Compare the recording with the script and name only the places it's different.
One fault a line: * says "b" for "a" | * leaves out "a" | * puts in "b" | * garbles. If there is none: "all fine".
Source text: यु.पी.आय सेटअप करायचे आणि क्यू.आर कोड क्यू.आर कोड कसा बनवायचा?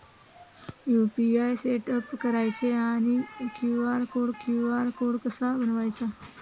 all fine